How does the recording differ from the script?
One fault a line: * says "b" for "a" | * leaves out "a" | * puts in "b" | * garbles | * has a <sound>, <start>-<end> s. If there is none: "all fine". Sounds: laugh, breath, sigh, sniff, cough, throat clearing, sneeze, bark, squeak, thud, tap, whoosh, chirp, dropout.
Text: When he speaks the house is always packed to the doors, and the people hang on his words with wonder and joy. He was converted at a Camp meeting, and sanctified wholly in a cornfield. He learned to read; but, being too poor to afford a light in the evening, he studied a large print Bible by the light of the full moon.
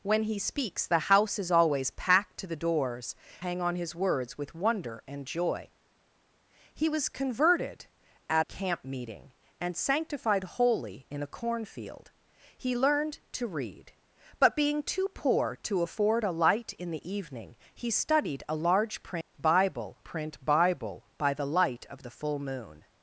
* leaves out "and the people"
* leaves out "a"
* has a dropout, 19.2-19.3 s
* puts in "print Bible"